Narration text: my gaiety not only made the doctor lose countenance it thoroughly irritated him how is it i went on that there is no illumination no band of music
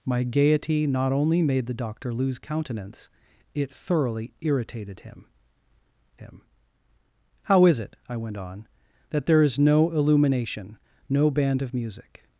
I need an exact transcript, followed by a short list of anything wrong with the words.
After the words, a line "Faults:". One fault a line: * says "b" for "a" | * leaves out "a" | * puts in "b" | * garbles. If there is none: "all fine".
my gaiety not only made the doctor lose countenance it thoroughly irritated him him how is it i went on that there is no illumination no band of music
Faults:
* puts in "him"